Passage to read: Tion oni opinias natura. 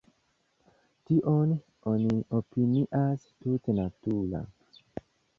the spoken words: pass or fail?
fail